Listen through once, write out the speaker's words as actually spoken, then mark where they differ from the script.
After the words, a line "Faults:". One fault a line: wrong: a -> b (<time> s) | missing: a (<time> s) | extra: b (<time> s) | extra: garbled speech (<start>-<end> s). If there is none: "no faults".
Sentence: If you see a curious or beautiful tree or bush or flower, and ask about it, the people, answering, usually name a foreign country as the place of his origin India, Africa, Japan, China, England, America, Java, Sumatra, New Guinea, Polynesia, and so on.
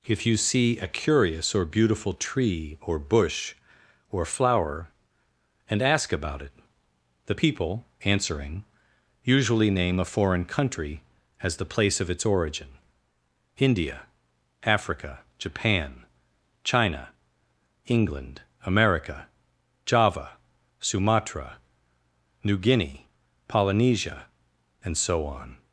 If you see a curious or beautiful tree or bush or flower, and ask about it, the people, answering, usually name a foreign country as the place of its origin India, Africa, Japan, China, England, America, Java, Sumatra, New Guinea, Polynesia, and so on.
Faults:
wrong: his -> its (12.1 s)